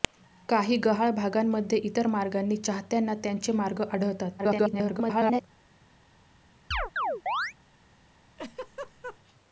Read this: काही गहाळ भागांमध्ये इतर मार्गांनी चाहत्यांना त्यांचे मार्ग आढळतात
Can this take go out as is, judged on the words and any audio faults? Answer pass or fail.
fail